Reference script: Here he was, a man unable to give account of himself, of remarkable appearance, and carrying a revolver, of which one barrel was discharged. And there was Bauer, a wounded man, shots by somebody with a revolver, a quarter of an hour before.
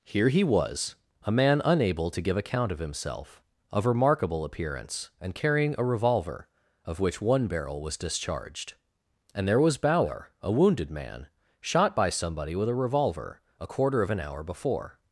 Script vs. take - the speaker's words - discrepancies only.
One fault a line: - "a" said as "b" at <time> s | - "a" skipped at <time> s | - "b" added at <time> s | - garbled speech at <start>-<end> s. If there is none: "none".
- "shots" said as "shot" at 11.6 s